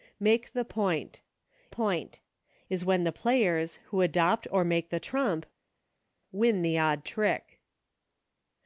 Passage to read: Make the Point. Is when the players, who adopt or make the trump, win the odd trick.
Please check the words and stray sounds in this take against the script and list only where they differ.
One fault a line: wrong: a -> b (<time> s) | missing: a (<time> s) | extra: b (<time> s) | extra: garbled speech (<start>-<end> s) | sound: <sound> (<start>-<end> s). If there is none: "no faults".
extra: Point (1.7 s)